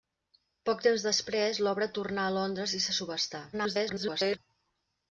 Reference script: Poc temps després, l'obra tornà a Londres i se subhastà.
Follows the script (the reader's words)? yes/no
no